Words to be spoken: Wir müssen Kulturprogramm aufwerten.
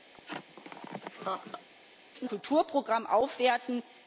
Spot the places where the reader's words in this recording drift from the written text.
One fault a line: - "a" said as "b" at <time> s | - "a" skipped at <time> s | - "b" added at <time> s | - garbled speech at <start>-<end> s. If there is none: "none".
none